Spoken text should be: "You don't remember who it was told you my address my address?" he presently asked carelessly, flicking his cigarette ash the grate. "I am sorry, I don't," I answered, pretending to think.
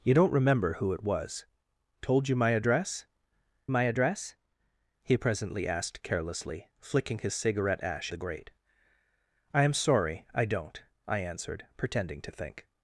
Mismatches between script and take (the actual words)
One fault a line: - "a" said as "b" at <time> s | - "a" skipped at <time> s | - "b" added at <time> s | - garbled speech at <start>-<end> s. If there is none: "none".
none